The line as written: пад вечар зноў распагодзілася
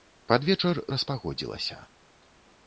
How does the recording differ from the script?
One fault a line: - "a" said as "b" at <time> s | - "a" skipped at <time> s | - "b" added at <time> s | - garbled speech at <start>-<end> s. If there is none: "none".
- "зноў" skipped at 0.8 s